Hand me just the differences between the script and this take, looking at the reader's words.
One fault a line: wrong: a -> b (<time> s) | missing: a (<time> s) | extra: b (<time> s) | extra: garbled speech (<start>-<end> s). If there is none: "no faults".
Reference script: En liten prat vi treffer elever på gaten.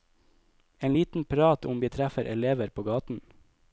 extra: om (1.6 s)